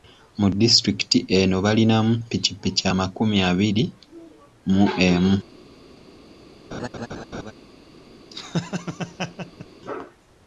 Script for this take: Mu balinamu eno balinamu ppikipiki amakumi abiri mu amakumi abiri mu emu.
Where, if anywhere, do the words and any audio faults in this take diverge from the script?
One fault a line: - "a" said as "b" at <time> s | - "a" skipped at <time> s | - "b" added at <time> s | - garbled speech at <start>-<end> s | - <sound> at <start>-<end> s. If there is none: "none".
- "balinamu" said as "disitulikiti" at 0.6 s
- "amakumi abiri mu" skipped at 4.8 s
- laugh at 6.7-7.5 s
- laugh at 8.3-9.7 s